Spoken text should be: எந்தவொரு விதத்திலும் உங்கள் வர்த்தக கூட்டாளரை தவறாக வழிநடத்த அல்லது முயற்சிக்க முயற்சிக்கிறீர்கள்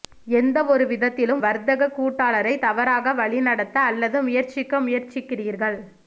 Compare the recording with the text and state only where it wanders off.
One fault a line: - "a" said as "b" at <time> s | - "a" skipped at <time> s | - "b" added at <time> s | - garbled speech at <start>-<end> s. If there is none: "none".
- "உங்கள்" skipped at 1.4 s